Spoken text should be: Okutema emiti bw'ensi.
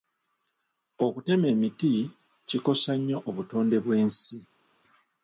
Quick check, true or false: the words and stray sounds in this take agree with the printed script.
false